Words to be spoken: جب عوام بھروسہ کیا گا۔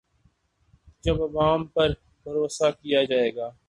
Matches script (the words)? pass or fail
fail